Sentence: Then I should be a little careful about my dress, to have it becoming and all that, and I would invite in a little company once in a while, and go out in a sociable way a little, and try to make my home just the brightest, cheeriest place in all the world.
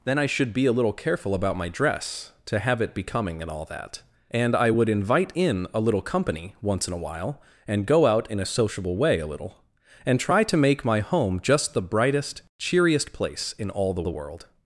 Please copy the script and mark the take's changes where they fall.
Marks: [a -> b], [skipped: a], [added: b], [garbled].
Then I should be a little careful about my dress, to have it becoming and all that, and I would invite in a little company once in a while, and go out in a sociable way a little, and try to make my home just the brightest, cheeriest place in all the [added: the] world.